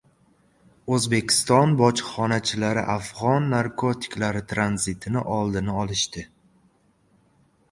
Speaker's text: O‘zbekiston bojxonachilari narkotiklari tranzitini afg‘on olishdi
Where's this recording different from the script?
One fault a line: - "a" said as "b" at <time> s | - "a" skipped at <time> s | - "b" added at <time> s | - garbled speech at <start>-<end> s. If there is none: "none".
- "afg‘on" added at 2.9 s
- "afg‘on" said as "oldini" at 5.4 s